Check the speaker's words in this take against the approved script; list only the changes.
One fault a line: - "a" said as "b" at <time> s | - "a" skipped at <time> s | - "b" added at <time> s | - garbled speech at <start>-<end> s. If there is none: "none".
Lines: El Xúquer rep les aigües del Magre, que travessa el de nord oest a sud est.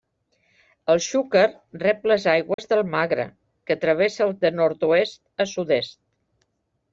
none